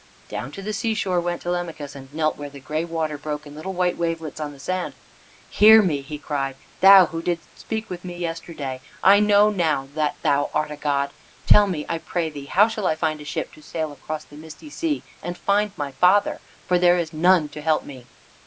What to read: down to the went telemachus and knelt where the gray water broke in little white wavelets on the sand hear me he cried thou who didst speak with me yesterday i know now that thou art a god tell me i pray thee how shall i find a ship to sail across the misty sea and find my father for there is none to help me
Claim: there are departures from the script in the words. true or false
true